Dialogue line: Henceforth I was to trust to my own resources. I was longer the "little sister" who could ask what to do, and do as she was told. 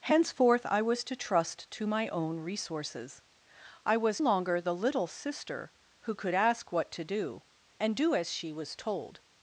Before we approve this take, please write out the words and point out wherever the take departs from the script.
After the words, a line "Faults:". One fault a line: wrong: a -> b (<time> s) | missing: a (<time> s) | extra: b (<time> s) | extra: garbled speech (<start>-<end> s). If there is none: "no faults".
Henceforth I was to trust to my own resources. I was longer the "little sister" who could ask what to do, and do as she was told.
Faults:
no faults